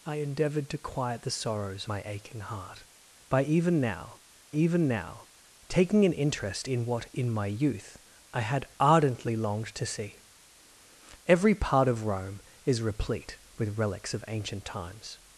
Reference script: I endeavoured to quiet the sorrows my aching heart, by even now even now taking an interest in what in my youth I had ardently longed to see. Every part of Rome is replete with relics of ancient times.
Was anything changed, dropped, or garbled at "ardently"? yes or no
no